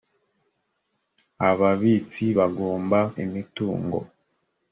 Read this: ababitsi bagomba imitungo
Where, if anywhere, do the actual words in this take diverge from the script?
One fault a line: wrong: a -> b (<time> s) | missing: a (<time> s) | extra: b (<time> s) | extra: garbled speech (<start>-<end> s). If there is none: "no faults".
no faults